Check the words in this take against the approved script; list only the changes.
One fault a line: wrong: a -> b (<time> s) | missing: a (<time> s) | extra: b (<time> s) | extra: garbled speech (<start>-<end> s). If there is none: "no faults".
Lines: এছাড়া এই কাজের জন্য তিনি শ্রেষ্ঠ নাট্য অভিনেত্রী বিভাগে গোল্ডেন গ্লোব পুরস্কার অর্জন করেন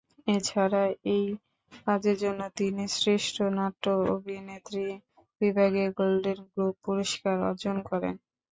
no faults